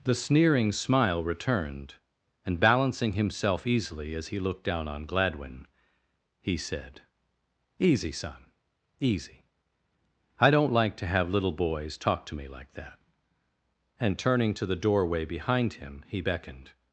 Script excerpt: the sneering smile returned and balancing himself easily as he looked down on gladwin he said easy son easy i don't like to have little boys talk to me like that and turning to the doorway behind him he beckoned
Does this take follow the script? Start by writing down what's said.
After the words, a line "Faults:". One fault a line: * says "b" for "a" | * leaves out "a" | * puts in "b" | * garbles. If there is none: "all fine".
the sneering smile returned and balancing himself easily as he looked down on gladwin he said easy son easy i don't like to have little boys talk to me like that and turning to the doorway behind him he beckoned
Faults:
all fine